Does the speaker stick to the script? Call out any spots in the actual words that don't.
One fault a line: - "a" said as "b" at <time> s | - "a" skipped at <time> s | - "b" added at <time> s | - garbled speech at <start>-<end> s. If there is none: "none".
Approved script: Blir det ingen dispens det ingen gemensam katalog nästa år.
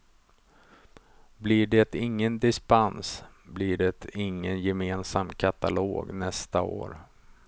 - "blir" added at 3.5 s